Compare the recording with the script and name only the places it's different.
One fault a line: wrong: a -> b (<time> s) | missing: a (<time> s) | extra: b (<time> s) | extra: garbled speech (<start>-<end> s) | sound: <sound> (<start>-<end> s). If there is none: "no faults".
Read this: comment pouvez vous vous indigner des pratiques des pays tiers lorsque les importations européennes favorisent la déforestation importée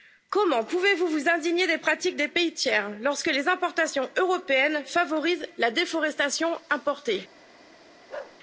sound: bark (8.1-8.4 s)